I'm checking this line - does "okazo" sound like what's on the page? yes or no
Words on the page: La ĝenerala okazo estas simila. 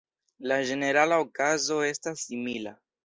yes